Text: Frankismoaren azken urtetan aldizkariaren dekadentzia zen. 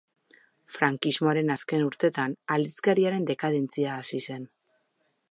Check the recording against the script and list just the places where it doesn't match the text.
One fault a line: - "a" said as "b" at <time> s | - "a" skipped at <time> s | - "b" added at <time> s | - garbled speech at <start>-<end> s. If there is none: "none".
- "hasi" added at 4.0 s